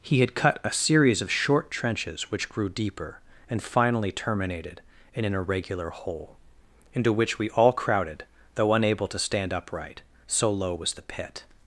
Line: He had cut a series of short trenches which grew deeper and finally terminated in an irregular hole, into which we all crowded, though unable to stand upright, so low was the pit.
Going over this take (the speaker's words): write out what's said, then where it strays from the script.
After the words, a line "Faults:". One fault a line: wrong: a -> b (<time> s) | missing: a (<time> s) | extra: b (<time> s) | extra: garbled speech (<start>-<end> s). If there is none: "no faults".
He had cut a series of short trenches which grew deeper and finally terminated in an irregular hole, into which we all crowded, though unable to stand upright, so low was the pit.
Faults:
no faults